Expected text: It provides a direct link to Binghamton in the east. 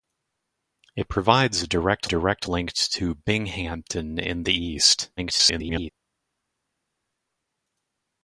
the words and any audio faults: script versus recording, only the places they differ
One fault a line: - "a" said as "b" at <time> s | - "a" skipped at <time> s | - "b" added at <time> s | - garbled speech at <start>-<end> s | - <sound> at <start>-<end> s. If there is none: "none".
- "direct" added at 2.1 s
- garbled speech at 5.2-5.9 s